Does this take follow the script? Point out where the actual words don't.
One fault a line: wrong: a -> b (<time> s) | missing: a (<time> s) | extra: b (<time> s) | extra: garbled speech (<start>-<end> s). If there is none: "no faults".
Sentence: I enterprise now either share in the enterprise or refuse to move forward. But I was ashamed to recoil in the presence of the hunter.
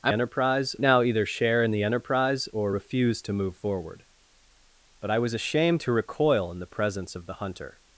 no faults